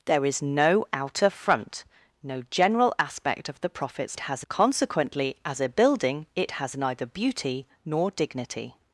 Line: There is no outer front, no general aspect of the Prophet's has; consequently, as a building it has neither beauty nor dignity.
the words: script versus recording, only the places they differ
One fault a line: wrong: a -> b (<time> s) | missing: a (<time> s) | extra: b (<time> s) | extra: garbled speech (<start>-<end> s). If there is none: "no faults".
no faults